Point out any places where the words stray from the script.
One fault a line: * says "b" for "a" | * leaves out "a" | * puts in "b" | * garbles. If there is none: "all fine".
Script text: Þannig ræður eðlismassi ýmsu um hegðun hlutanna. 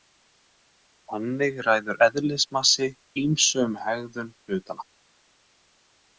all fine